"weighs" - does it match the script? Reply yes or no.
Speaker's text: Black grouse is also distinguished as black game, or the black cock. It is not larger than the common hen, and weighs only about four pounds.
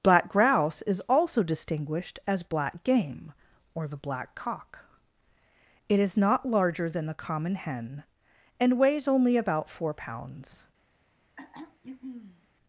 yes